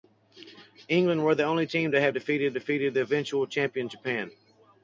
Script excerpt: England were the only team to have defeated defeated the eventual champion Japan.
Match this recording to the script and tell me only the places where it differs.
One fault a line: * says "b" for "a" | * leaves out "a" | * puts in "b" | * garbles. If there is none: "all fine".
all fine